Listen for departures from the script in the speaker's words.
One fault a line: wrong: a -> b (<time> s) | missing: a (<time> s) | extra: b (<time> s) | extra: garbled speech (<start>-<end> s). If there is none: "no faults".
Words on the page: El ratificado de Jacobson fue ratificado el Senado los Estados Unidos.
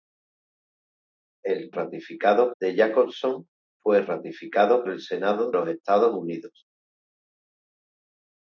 no faults